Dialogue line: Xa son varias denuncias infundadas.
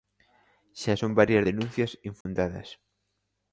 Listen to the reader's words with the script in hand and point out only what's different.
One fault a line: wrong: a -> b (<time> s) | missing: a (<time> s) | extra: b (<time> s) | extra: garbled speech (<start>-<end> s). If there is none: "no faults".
no faults